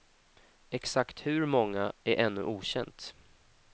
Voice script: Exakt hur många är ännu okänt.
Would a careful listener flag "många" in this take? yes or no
no